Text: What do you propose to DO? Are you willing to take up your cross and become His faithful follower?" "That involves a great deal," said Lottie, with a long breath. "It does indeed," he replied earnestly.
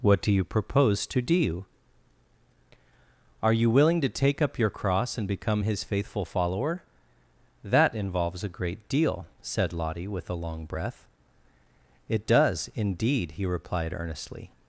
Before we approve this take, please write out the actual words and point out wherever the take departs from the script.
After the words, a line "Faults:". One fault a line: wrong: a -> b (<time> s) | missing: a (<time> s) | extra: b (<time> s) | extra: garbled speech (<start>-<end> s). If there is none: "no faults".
What do you propose to DO? Are you willing to take up your cross and become His faithful follower?" "That involves a great deal," said Lottie, with a long breath. "It does indeed," he replied earnestly.
Faults:
no faults